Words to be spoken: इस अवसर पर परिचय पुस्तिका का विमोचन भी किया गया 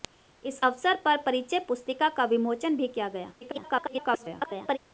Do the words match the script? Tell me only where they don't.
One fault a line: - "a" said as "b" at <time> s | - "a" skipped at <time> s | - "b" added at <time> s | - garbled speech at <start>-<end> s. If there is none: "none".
- garbled speech at 3.4-4.8 s